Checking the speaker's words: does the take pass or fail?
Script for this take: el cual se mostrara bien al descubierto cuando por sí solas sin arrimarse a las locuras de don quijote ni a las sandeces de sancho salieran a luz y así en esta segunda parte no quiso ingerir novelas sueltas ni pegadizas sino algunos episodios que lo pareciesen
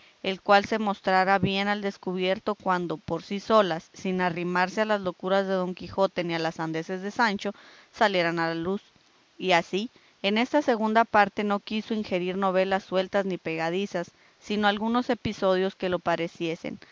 pass